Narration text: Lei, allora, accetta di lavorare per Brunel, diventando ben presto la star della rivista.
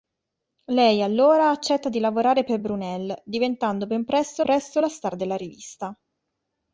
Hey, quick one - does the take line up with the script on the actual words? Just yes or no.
no